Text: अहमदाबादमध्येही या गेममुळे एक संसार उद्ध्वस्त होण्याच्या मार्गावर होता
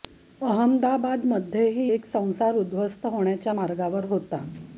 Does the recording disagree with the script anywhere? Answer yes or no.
yes